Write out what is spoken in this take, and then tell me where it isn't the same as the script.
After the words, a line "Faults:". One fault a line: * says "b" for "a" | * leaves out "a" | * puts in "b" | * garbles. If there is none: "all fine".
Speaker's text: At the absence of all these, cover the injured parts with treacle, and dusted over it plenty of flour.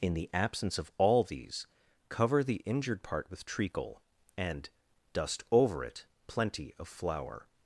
In the absence of all these, cover the injured part with treacle, and dust over it plenty of flour.
Faults:
* says "In" for "At"
* says "part" for "parts"
* says "dust" for "dusted"